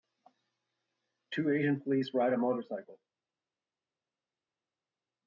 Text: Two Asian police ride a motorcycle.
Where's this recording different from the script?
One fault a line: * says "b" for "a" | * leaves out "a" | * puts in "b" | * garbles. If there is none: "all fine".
all fine